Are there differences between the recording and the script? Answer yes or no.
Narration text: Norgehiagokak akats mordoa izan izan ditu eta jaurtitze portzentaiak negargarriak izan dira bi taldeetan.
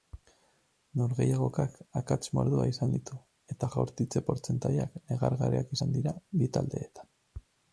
yes